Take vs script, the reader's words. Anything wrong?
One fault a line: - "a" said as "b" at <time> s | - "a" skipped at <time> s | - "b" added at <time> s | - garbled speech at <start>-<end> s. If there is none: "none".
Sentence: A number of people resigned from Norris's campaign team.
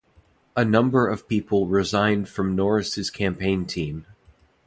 none